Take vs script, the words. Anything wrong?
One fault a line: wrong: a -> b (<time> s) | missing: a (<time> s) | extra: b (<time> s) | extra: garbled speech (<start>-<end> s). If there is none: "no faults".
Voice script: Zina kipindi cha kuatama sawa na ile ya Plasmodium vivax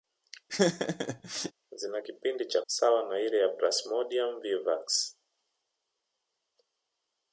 missing: kuatama (2.6 s)